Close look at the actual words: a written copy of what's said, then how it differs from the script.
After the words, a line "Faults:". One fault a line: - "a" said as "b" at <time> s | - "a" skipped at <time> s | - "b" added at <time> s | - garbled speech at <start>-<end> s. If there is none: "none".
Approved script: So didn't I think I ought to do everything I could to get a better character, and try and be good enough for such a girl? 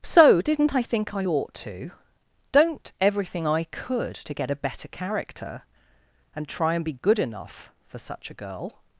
So didn't I think I ought to don't everything I could to get a better character, and try and be good enough for such a girl?
Faults:
- "do" said as "don't" at 2.5 s